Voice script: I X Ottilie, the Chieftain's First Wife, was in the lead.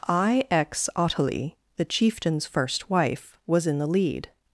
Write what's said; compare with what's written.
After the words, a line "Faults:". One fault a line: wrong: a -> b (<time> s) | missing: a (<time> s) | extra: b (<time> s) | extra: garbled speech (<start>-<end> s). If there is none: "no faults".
I X Ottilie, the Chieftain's First Wife, was in the lead.
Faults:
no faults